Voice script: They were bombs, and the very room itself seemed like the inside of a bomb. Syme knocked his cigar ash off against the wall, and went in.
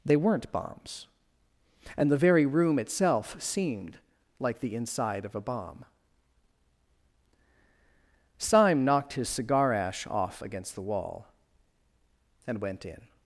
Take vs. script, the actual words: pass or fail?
fail